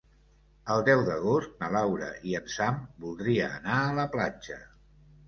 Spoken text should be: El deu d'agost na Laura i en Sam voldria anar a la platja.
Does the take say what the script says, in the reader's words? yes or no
yes